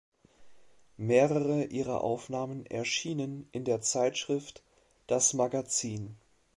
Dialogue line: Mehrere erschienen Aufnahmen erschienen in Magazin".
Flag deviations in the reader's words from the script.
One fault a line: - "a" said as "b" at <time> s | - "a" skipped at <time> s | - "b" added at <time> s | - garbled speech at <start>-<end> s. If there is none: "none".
- "erschienen" said as "ihrer" at 1.6 s
- "der Zeitschrift Das" added at 3.7 s